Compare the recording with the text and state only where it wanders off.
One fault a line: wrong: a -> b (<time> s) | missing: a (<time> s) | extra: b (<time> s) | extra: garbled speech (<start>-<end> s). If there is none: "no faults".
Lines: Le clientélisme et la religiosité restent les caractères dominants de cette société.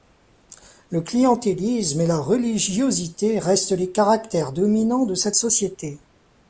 no faults